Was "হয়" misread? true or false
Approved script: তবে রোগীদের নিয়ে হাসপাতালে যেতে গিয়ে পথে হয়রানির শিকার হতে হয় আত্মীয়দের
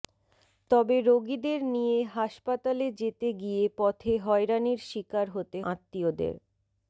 true